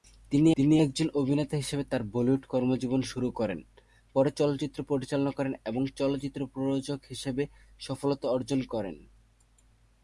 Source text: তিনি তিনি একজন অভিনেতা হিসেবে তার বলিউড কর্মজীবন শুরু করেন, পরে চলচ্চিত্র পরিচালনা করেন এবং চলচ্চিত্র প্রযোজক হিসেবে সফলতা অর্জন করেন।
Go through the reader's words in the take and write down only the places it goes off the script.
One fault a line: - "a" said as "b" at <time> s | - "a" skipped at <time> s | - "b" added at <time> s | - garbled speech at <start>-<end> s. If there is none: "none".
none